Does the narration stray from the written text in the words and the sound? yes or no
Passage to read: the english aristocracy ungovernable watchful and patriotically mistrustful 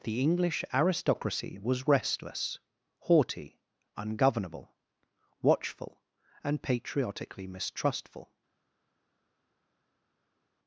yes